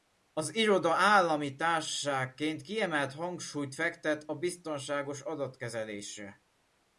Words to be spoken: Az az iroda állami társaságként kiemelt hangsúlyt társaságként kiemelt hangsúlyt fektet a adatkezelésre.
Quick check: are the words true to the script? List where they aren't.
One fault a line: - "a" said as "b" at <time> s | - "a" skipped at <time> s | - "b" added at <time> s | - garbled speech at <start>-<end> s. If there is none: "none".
- "az" skipped at 0.6 s
- "társaságként kiemelt hangsúlyt" skipped at 3.8 s
- "biztonságos" added at 4.3 s